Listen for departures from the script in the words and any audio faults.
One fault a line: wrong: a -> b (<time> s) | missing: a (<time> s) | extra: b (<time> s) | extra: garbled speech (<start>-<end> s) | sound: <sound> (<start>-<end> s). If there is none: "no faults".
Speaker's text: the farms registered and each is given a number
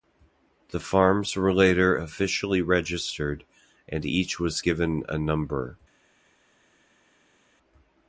extra: were later officially (1.4 s)
wrong: is -> was (4.4 s)